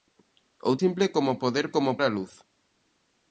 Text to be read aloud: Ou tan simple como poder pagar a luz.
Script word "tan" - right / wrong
wrong